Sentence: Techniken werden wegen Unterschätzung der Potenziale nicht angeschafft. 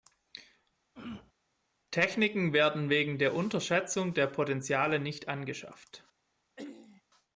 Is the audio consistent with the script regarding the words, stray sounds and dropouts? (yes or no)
no